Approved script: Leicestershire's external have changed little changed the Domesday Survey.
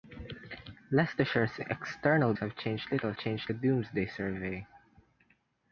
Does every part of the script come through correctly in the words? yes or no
yes